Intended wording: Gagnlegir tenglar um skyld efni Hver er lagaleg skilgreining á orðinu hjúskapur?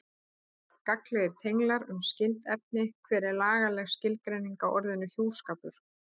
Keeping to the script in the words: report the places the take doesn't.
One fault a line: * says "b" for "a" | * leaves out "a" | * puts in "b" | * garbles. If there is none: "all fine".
all fine